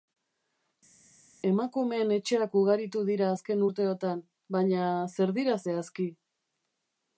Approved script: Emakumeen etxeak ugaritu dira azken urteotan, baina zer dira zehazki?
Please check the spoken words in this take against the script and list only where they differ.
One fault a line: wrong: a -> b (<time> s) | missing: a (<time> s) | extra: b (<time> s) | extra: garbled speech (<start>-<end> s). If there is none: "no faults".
no faults